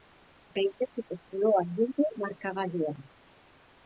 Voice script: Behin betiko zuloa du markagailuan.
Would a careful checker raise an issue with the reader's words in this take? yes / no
yes